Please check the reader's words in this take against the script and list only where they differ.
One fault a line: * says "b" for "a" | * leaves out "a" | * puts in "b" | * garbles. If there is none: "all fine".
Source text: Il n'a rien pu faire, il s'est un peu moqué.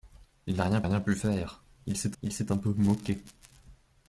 * puts in "rien"
* puts in "il s'est"